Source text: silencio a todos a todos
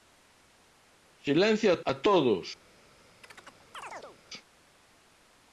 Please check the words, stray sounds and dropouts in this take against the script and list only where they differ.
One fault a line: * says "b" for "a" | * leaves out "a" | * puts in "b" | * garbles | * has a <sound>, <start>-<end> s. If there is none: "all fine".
* leaves out "todos"
* has a chirp, 3.2-4.2 s